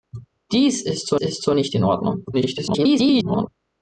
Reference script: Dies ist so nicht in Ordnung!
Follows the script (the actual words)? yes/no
no